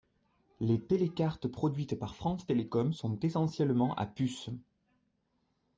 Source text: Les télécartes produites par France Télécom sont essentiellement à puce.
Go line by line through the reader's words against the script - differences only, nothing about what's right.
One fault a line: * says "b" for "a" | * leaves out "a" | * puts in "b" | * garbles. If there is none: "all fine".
all fine